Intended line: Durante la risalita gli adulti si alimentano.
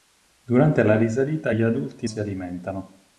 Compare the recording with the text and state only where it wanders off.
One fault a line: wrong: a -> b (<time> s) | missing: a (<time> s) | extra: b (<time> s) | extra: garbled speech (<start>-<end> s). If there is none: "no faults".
no faults